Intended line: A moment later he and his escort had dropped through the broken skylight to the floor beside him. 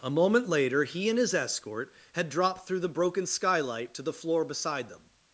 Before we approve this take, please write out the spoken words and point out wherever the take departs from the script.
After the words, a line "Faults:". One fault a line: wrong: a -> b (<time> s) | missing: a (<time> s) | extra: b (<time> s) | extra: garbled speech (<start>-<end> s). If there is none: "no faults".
A moment later he and his escort had dropped through the broken skylight to the floor beside them.
Faults:
wrong: him -> them (4.9 s)